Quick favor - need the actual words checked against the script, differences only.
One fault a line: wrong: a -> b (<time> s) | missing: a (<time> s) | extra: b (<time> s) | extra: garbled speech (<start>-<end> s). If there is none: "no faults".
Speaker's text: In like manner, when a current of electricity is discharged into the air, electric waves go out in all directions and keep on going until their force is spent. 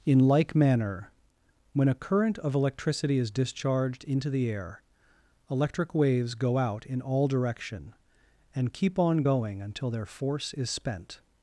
wrong: directions -> direction (7.3 s)